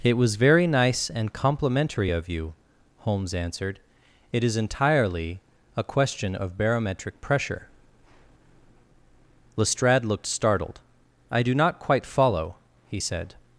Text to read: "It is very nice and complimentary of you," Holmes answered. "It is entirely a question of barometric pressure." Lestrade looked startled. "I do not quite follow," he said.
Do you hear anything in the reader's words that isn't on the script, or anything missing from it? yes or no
yes